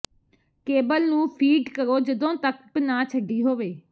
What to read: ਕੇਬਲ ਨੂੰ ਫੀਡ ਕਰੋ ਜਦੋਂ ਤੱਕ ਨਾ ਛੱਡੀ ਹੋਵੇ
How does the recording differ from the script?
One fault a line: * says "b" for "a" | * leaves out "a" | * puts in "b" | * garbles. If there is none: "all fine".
all fine